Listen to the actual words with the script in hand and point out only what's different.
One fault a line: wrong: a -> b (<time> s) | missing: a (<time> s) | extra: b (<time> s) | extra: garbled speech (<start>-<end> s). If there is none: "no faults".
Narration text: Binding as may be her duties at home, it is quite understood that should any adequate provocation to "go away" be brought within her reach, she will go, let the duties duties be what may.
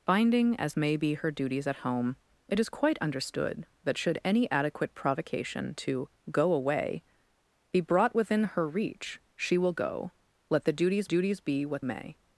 no faults